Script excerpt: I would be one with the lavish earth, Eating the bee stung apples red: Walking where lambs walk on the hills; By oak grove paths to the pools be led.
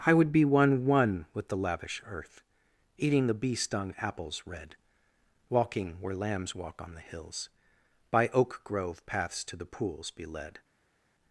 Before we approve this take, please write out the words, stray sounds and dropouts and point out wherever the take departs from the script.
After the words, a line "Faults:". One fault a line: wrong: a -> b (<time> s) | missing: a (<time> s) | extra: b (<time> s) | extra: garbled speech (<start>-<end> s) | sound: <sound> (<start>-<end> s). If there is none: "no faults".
I would be one one with the lavish earth, Eating the bee stung apples red: Walking where lambs walk on the hills; By oak grove paths to the pools be led.
Faults:
extra: one (0.9 s)